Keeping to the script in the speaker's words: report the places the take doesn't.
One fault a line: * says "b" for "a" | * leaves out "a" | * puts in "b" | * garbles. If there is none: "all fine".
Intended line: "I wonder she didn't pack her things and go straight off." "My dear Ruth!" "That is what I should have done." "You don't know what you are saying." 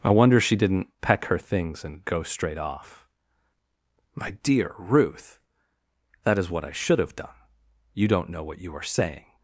* says "peck" for "pack"